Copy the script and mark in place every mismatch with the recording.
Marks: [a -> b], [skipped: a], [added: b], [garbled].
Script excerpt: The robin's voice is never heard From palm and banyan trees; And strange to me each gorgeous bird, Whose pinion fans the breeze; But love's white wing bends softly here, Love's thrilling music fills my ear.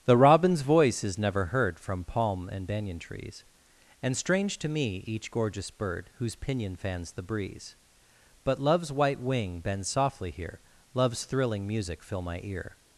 The robin's voice is never heard From palm and banyan trees; And strange to me each gorgeous bird, Whose pinion fans the breeze; But love's white wing bends softly here, Love's thrilling music [fills -> fill] my ear.